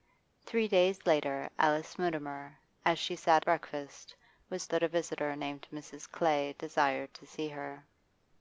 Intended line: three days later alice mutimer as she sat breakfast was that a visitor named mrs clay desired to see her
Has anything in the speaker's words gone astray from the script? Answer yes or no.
no